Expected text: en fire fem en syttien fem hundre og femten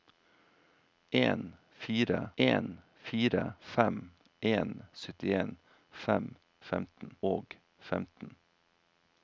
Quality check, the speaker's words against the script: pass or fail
fail